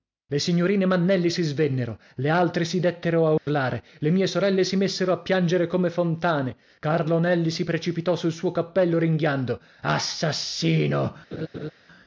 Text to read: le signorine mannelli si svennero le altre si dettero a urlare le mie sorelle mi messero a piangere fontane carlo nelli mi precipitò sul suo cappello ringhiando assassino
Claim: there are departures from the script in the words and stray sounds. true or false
true